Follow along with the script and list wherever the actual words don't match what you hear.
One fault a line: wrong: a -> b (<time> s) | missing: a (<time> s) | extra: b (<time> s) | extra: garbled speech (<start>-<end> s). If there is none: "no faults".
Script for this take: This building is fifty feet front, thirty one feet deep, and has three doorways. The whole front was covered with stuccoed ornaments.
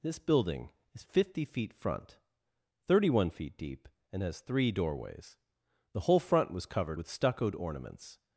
no faults